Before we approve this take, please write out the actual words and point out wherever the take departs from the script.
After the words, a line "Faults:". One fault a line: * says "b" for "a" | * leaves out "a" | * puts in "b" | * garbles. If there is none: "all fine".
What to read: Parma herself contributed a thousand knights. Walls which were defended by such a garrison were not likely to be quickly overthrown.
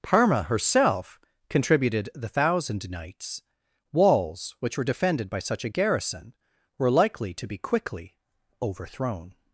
Parma herself contributed the thousand knights. Walls which were defended by such a garrison were likely to be quickly overthrown.
Faults:
* says "the" for "a"
* leaves out "not"